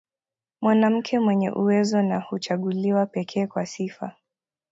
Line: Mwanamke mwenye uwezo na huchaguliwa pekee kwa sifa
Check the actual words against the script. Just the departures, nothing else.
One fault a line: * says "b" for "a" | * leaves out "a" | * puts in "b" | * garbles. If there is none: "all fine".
all fine